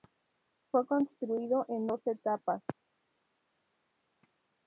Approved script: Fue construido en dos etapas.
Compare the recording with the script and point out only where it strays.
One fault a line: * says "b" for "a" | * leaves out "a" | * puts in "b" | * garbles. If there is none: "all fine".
all fine